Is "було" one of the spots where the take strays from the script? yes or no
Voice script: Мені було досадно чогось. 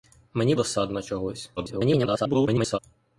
yes